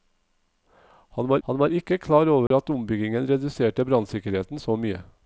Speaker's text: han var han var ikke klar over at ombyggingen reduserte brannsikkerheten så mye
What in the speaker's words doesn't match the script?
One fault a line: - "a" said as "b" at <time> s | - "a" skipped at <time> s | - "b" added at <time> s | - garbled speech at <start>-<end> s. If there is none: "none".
none